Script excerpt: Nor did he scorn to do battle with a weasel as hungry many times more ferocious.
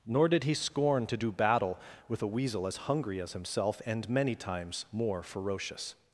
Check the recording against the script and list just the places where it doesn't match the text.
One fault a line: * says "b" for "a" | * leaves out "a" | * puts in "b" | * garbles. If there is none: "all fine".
* puts in "as himself and"